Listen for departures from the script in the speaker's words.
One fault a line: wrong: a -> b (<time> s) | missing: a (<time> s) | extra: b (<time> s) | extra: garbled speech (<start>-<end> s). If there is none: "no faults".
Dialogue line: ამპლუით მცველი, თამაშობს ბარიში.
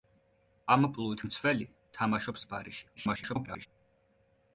extra: garbled speech (3.0-3.7 s)